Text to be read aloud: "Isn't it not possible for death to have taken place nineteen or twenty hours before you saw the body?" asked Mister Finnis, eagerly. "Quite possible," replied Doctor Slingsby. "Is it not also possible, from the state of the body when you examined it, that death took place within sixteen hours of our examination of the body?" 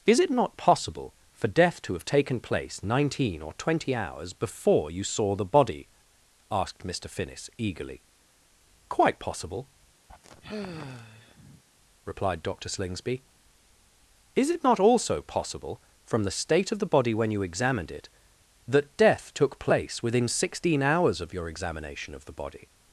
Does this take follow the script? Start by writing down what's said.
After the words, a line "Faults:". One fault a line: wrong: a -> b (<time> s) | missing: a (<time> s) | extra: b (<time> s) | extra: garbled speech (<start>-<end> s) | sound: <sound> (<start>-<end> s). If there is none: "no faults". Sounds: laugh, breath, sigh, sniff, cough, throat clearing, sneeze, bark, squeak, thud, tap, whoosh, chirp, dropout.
"Is it not possible for death to have taken place nineteen or twenty hours before you saw the body?" asked Mister Finnis, eagerly. "Quite possible," replied Doctor Slingsby. "Is it not also possible, from the state of the body when you examined it, that death took place within sixteen hours of your examination of the body?"
Faults:
wrong: Isn't -> Is (0.1 s)
sound: sigh (10.1-11.6 s)
wrong: our -> your (21.3 s)